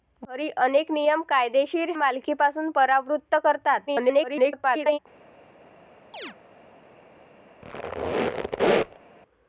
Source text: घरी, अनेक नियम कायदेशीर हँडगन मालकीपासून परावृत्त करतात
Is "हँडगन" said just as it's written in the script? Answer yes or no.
no